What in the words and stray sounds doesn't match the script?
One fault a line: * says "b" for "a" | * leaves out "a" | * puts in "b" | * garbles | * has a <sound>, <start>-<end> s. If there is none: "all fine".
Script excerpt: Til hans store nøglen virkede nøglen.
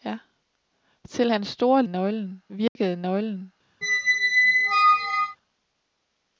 * has a dropout, 2.7-2.8 s
* has a squeak, 3.8-5.4 s